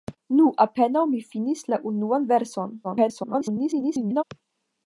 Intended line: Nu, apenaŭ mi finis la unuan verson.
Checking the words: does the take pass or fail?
fail